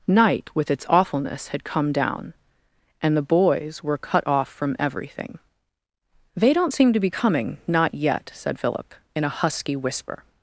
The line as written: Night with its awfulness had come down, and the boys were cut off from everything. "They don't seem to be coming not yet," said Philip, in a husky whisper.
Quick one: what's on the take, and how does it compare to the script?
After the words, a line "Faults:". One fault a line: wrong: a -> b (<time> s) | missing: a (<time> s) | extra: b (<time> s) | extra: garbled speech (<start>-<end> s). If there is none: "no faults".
Night with its awfulness had come down, and the boys were cut off from everything. "They don't seem to be coming not yet," said Philip, in a husky whisper.
Faults:
no faults